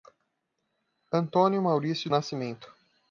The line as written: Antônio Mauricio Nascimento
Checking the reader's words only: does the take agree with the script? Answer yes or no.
yes